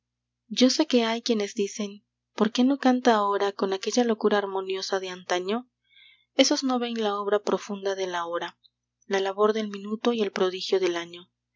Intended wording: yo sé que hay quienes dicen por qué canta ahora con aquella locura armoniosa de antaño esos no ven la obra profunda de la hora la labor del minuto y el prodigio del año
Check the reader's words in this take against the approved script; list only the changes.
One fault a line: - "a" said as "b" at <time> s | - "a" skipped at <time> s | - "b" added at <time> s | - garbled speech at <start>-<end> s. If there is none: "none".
- "no" added at 2.6 s